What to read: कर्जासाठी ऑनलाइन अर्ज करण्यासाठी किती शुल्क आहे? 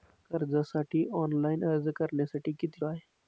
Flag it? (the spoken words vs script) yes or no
yes